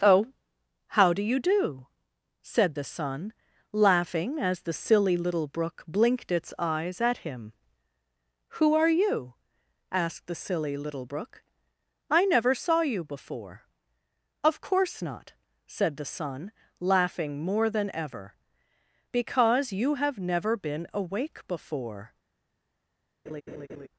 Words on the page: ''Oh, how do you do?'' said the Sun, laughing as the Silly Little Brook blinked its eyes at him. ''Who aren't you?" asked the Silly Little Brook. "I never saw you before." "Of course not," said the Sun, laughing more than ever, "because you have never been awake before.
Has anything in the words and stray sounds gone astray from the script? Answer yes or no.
yes